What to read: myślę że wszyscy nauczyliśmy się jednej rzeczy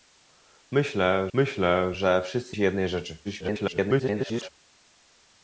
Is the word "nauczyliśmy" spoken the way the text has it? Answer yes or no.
no